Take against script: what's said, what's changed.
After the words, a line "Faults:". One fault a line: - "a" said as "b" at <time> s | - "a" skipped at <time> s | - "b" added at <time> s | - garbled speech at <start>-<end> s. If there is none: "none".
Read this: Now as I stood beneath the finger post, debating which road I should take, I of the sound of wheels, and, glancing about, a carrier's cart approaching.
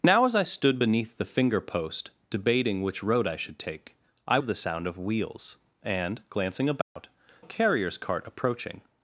Now as I stood beneath the finger post, debating which road I should take, I of the sound of wheels, and, glancing about, a carrier's cart approaching.
Faults:
none